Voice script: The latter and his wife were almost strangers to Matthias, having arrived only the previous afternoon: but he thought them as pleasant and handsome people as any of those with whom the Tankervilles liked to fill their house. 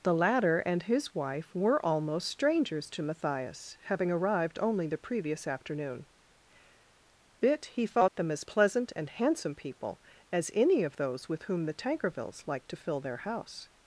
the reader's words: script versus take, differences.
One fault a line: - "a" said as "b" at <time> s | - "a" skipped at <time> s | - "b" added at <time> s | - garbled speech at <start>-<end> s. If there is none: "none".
- "but" said as "bit" at 7.4 s